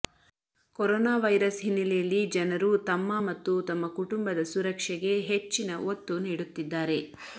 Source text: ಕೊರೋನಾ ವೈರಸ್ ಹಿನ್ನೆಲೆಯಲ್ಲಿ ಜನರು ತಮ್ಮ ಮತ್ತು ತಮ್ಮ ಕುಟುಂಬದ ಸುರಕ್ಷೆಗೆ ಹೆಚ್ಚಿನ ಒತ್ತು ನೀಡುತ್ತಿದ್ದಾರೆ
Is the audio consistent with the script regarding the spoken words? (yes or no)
yes